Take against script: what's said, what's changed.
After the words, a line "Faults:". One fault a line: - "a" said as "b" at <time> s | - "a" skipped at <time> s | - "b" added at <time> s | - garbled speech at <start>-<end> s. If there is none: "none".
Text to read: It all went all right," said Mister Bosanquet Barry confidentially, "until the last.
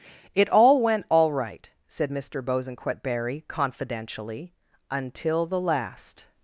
It all went all right," said Mister Bosanquet Barry confidentially, "until the last.
Faults:
none